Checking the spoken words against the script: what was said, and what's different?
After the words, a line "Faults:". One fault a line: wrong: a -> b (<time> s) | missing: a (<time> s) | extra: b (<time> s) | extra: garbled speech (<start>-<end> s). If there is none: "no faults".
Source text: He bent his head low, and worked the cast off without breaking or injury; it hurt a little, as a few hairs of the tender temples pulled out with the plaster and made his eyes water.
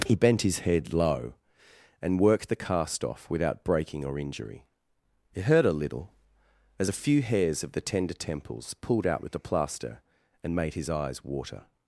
He bent his head low, and worked the cast off without breaking or injury; it hurt a little, as a few hairs of the tender temples pulled out with the plaster and made his eyes water.
Faults:
no faults